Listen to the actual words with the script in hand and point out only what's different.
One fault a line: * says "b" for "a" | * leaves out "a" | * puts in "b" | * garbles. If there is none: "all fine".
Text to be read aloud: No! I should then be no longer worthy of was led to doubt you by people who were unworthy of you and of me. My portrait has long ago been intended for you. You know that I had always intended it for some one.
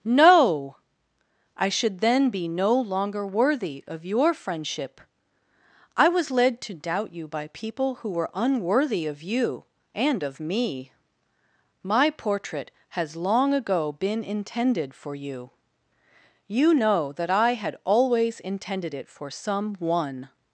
* puts in "your friendship I"